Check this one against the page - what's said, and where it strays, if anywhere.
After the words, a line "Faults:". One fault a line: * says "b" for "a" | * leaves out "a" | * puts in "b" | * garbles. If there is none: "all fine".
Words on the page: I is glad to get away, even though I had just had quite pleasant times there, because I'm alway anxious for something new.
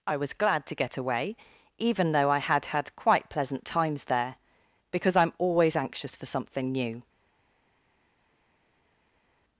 I was glad to get away, even though I had had quite pleasant times there, because I'm always anxious for something new.
Faults:
* says "was" for "is"
* leaves out "just"
* says "always" for "alway"